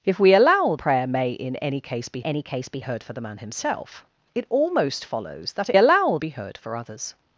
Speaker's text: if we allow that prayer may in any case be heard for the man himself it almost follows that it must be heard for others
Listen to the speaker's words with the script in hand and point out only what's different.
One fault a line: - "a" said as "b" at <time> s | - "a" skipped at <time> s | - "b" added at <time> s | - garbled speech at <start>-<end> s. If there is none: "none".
- "that" skipped at 0.8 s
- "any case be" added at 2.2 s
- "must" said as "allow" at 5.8 s